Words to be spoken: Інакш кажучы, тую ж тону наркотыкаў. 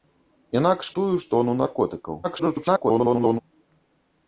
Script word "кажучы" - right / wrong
wrong